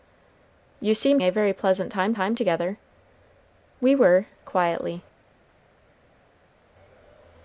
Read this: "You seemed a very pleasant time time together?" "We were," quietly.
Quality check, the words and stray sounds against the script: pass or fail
pass